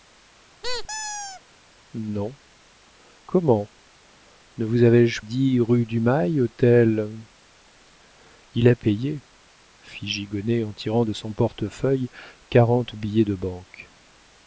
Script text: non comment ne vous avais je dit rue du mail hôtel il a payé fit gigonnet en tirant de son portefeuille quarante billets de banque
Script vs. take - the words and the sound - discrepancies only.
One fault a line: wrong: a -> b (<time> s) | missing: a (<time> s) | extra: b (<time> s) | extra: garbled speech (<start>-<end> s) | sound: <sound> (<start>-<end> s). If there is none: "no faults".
sound: squeak (0.6-1.4 s)